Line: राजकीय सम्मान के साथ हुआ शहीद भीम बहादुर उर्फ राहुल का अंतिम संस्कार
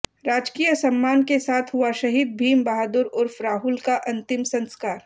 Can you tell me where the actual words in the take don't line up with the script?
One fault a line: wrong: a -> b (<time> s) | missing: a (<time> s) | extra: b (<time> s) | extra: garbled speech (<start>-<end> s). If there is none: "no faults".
no faults